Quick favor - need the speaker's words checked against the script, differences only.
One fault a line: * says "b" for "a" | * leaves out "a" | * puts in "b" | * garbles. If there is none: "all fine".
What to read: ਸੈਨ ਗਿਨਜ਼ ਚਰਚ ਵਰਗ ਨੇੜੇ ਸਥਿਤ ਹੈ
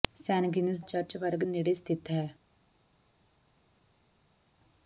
all fine